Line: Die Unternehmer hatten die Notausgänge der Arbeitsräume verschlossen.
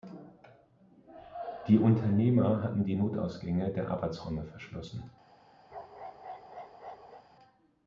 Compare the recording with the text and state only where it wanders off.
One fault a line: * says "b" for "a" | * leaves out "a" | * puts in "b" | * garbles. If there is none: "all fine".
all fine